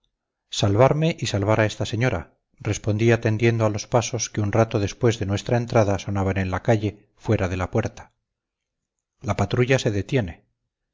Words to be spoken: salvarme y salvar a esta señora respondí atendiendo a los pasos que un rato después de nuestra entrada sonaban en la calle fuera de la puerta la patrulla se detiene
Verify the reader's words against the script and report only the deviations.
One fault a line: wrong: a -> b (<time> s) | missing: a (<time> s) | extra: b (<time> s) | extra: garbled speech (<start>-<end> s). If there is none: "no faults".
no faults